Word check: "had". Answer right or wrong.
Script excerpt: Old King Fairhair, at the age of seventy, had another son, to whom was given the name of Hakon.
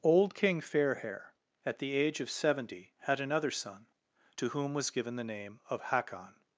right